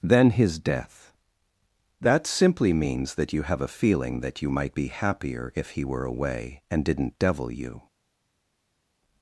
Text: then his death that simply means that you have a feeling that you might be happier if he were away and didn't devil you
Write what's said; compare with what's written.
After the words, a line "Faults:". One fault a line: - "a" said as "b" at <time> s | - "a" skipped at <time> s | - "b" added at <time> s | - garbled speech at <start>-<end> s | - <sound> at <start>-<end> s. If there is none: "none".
then his death that simply means that you have a feeling that you might be happier if he were away and didn't devil you
Faults:
none